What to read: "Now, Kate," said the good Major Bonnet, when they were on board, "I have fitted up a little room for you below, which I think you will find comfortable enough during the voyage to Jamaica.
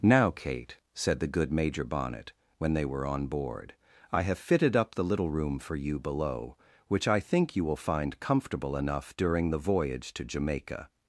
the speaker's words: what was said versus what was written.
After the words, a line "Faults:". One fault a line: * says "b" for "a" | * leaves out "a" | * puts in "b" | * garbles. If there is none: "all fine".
"Now, Kate," said the good Major Bonnet, when they were on board, "I have fitted up the little room for you below, which I think you will find comfortable enough during the voyage to Jamaica.
Faults:
* says "the" for "a"